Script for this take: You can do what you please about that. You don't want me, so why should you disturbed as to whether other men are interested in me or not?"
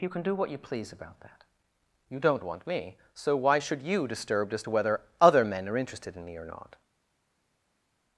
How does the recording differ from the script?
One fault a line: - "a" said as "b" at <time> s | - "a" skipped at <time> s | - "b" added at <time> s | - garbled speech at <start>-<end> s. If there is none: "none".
none